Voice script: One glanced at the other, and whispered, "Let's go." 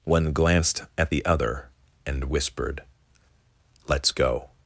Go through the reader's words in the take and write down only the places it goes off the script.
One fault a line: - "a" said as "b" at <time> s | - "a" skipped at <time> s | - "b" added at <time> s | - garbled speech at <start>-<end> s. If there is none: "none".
none